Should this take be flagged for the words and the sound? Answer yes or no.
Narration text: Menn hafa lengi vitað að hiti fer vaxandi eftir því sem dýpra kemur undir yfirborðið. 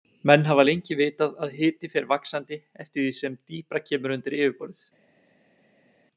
no